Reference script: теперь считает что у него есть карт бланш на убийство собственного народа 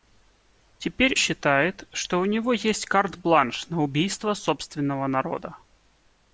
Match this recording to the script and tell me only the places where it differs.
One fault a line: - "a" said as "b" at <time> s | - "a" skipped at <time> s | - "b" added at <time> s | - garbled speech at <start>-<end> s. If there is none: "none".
none